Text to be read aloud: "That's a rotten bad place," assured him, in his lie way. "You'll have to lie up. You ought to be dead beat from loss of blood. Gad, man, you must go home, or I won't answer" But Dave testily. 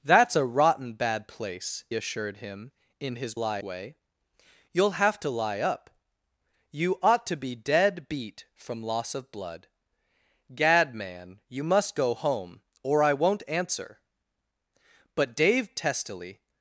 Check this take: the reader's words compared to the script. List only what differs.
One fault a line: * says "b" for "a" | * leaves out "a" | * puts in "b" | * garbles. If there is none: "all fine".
all fine